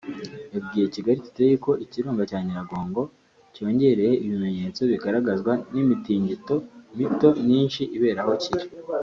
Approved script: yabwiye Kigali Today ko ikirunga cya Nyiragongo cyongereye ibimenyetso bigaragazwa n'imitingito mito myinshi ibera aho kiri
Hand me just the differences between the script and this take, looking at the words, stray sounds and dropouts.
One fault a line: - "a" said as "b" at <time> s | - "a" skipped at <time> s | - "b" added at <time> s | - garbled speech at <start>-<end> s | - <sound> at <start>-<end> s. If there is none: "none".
none